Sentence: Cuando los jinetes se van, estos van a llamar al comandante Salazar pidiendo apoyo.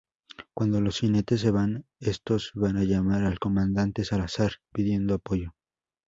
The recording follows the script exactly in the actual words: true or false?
true